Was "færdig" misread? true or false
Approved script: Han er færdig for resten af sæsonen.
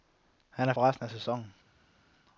true